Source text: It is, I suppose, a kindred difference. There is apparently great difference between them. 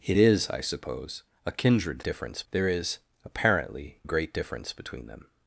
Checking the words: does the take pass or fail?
pass